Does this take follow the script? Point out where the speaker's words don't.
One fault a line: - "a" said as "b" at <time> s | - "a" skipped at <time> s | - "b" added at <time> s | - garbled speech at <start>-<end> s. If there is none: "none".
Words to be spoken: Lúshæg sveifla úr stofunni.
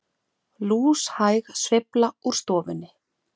none